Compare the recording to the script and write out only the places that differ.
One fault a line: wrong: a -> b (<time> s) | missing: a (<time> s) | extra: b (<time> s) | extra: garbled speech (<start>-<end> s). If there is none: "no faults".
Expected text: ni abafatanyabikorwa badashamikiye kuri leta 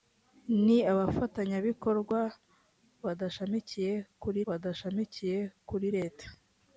extra: badashamikiye kuri (4.5 s)